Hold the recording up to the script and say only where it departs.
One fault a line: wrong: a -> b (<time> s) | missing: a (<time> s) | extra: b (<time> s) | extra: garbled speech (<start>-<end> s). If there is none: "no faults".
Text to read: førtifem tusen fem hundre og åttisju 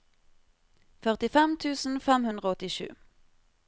no faults